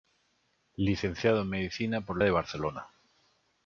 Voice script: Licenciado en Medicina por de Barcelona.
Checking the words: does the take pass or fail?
pass